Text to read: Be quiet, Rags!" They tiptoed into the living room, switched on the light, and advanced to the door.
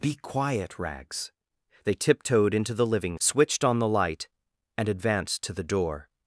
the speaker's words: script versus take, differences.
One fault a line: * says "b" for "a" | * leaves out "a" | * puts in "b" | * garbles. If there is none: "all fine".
* leaves out "room"